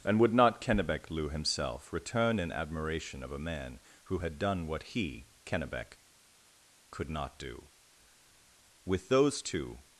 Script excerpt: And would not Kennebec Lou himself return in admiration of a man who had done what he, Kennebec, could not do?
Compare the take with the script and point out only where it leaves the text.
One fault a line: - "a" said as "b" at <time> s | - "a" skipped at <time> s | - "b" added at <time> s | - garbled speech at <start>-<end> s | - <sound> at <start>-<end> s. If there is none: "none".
- "With those two" added at 8.8 s